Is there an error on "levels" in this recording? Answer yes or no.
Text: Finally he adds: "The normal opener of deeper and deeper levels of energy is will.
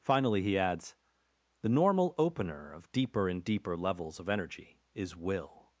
no